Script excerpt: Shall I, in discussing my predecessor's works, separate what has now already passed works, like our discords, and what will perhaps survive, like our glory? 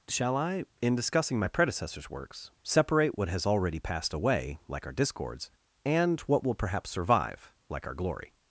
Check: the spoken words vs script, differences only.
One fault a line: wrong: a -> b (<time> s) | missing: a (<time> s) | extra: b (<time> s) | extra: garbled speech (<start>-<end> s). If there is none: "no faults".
missing: now (3.5 s)
wrong: works -> away (4.1 s)